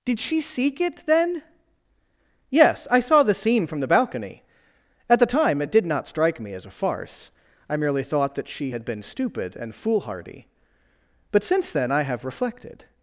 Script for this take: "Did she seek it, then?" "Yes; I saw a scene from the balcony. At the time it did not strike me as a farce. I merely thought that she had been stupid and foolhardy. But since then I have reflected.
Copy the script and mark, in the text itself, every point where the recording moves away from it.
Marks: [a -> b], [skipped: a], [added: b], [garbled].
"Did she seek it, then?" "Yes; I saw [a -> the] scene from the balcony. At the time it did not strike me as a farce. I merely thought that she had been stupid and foolhardy. But since then I have reflected.